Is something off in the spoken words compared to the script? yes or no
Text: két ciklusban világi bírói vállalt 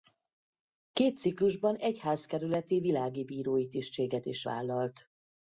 yes